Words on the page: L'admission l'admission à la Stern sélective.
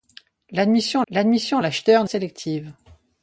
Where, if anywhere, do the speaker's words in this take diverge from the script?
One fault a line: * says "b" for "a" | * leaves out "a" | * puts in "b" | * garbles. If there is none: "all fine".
all fine